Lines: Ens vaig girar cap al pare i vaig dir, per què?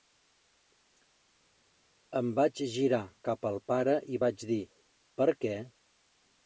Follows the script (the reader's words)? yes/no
no